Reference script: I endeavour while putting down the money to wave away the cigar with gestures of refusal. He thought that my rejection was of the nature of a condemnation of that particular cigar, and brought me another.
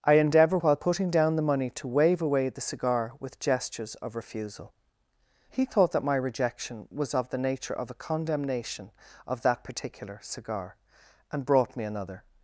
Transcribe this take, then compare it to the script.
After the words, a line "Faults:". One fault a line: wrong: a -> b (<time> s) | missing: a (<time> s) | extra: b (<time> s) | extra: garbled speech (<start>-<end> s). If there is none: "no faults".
I endeavour while putting down the money to wave away the cigar with gestures of refusal. He thought that my rejection was of the nature of a condemnation of that particular cigar, and brought me another.
Faults:
no faults